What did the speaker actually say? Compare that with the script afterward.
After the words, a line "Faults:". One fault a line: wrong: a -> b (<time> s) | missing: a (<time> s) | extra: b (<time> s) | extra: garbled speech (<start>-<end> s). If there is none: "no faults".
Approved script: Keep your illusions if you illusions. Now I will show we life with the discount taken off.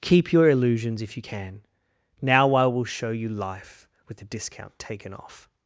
Keep your illusions if you can. Now I will show you life with the discount taken off.
Faults:
wrong: illusions -> can (1.2 s)
wrong: we -> you (3.1 s)